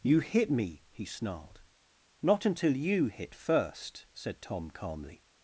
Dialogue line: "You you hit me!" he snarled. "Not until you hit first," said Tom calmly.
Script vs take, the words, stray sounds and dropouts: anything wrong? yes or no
yes